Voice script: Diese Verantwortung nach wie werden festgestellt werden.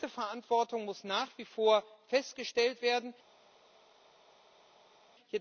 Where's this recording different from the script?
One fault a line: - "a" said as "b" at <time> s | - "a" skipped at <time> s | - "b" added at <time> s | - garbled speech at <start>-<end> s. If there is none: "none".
- "muss" added at 0.8 s
- "werden" said as "vor" at 1.4 s